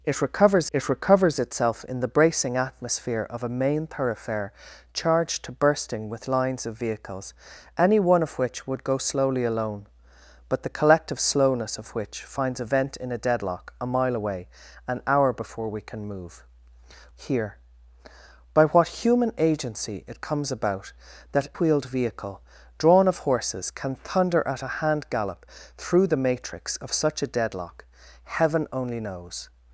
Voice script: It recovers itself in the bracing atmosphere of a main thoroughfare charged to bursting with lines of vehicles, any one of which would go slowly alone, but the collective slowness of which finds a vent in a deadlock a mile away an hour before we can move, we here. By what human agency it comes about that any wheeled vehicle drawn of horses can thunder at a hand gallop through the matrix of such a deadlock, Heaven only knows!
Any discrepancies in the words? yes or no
yes